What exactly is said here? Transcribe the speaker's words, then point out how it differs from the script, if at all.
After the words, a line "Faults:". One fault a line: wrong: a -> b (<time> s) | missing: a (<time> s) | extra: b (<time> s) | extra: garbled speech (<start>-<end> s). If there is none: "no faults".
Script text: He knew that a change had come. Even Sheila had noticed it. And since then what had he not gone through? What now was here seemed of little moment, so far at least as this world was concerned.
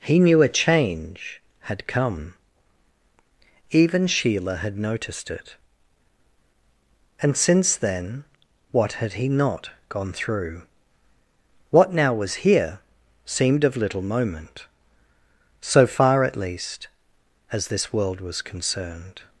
He knew a change had come. Even Sheila had noticed it. And since then what had he not gone through? What now was here seemed of little moment, so far at least as this world was concerned.
Faults:
missing: that (0.4 s)